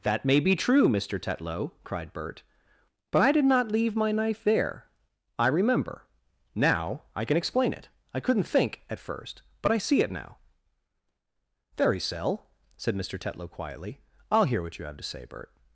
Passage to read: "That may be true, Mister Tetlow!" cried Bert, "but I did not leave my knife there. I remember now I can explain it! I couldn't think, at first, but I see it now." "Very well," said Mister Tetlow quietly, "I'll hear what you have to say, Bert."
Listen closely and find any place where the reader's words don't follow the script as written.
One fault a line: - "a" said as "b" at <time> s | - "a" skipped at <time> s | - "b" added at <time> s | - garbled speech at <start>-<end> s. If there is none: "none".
- "well" said as "cell" at 12.0 s